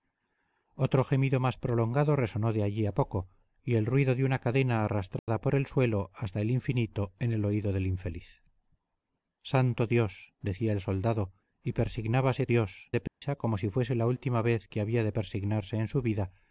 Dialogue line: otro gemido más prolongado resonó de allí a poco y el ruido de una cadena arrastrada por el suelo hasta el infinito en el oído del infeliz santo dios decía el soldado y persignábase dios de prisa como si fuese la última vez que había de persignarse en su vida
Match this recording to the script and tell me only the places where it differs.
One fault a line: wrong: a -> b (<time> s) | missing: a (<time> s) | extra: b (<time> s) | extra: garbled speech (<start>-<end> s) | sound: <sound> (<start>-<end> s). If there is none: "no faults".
sound: dropout (5.2-5.3 s)
sound: dropout (13.1-13.2 s)